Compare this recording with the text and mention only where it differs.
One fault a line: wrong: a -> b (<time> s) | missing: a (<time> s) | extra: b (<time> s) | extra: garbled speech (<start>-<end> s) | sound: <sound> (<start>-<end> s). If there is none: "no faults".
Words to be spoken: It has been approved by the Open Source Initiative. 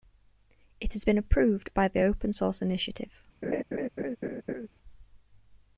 sound: laugh (3.4-4.7 s)